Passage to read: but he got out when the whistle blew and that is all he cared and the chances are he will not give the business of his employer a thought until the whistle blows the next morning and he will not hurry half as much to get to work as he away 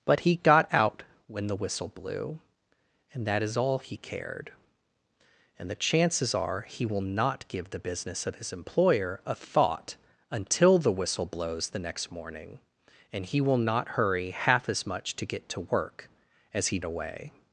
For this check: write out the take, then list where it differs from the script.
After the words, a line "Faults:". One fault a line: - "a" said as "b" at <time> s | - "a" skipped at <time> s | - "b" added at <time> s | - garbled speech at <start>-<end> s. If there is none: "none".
but he got out when the whistle blew and that is all he cared and the chances are he will not give the business of his employer a thought until the whistle blows the next morning and he will not hurry half as much to get to work as he away
Faults:
none